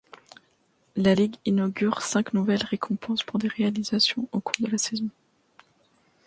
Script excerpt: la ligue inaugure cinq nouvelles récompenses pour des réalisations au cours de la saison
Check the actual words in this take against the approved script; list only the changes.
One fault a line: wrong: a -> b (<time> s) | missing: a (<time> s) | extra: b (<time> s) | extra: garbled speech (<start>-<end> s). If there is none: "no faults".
no faults